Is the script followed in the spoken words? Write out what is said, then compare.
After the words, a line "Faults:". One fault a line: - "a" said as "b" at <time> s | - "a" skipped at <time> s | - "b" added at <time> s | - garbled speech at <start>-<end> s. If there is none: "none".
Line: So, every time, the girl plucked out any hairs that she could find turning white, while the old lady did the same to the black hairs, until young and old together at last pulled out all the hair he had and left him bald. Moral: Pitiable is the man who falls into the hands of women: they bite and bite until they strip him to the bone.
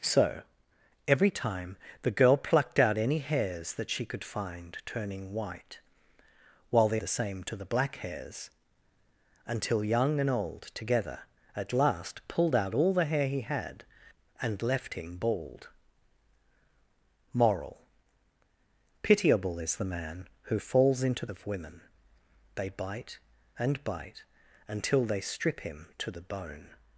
So, every time, the girl plucked out any hairs that she could find turning white, while the the same to the black hairs, until young and old together at last pulled out all the hair he had and left him bald. Moral: Pitiable is the man who falls into of women: they bite and bite until they strip him to the bone.
Faults:
- "old lady did" skipped at 7.0 s
- "the hands" skipped at 21.3 s